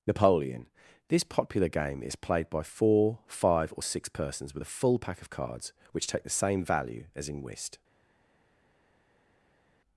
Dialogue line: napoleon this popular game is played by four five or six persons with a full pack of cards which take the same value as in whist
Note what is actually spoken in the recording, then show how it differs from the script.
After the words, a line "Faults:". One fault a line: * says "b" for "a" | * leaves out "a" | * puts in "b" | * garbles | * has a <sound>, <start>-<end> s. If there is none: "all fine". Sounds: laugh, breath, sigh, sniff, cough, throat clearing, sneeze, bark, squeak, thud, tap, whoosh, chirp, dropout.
napoleon this popular game is played by four five or six persons with a full pack of cards which take the same value as in whist
Faults:
all fine